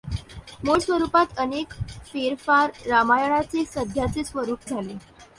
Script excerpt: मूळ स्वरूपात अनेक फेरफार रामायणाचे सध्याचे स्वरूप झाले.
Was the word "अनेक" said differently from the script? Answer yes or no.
no